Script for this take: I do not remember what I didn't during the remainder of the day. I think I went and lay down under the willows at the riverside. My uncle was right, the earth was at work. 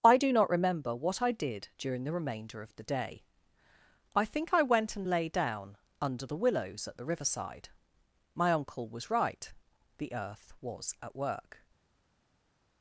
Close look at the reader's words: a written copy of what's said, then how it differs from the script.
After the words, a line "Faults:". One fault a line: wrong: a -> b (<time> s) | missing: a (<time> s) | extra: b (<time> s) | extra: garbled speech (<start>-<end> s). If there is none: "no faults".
I do not remember what I did during the remainder of the day. I think I went and lay down under the willows at the riverside. My uncle was right, the earth was at work.
Faults:
wrong: didn't -> did (1.3 s)